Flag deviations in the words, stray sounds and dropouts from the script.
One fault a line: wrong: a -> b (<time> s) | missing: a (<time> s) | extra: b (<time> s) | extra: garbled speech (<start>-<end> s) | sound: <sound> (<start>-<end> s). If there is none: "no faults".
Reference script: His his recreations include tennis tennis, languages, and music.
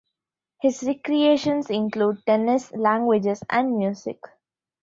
missing: his (0.8 s)
missing: tennis (2.7 s)